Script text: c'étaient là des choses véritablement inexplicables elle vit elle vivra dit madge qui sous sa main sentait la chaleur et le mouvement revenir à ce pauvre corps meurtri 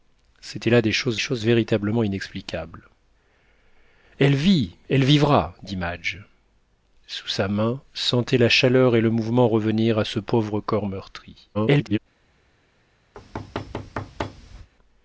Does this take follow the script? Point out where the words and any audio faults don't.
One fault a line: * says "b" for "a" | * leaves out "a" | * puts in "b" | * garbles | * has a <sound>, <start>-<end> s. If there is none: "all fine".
* puts in "choses"
* leaves out "qui"
* garbles
* has a thud, 13.1-14.7 s